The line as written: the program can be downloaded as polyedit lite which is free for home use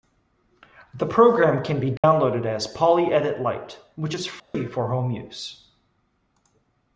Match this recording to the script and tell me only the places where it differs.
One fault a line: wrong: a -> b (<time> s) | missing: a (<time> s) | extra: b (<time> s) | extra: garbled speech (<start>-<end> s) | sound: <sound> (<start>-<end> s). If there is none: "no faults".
sound: dropout (2.0-2.0 s)
sound: dropout (4.4-4.5 s)